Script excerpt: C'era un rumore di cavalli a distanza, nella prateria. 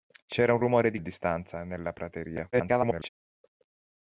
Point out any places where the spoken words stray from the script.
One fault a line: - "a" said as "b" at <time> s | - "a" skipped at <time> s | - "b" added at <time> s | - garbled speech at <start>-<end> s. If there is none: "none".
- "cavalli" skipped at 1.0 s
- garbled speech at 2.5-3.1 s